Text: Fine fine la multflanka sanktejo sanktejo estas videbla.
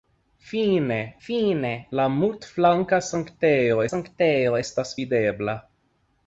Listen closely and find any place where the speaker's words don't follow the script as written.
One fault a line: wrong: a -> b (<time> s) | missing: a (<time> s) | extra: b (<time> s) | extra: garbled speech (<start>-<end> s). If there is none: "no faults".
no faults